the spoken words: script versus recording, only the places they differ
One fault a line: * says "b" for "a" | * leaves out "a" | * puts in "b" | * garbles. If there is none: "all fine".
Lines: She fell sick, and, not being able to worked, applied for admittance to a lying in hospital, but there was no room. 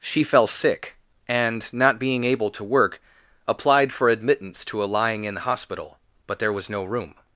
* says "work" for "worked"